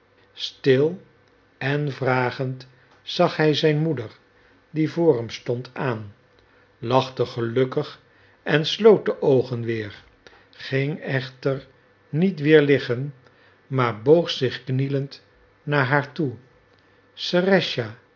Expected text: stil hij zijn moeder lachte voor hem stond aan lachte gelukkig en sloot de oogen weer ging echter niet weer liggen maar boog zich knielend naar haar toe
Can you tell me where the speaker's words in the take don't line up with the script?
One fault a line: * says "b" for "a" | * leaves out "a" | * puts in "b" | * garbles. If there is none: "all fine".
* puts in "en vragend zag"
* says "die" for "lachte"